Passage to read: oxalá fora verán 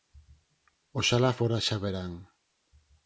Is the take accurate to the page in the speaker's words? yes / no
no